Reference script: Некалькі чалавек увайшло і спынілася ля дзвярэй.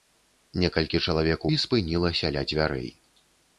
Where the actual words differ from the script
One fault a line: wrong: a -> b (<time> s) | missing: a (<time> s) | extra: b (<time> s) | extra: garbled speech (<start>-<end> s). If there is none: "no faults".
missing: увайшло (1.4 s)